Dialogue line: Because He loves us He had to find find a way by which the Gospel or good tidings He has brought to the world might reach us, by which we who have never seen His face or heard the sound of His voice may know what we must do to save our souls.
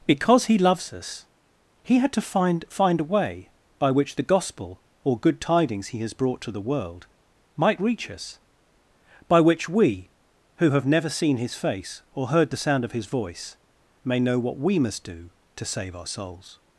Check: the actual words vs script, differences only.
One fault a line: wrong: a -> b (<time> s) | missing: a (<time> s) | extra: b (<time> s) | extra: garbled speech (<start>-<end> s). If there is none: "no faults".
no faults